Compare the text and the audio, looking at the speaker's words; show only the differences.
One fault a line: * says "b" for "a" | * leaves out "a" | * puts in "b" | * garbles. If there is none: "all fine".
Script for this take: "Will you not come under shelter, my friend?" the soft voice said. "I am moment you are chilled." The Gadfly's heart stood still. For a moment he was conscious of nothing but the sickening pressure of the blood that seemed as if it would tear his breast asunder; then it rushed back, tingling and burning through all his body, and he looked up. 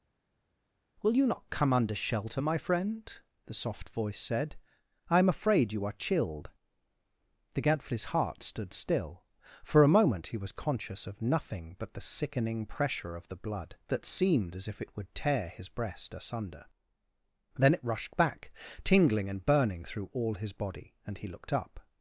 * says "afraid" for "moment"